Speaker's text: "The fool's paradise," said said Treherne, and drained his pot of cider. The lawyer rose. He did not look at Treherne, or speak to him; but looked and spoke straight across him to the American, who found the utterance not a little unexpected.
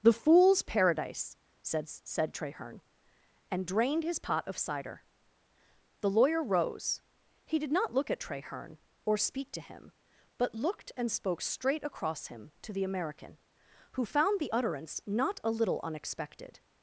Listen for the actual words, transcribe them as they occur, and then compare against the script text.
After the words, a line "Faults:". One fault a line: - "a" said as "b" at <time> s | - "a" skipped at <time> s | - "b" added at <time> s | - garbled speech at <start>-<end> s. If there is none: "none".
"The fool's paradise," said said Treherne, and drained his pot of cider. The lawyer rose. He did not look at Treherne, or speak to him; but looked and spoke straight across him to the American, who found the utterance not a little unexpected.
Faults:
none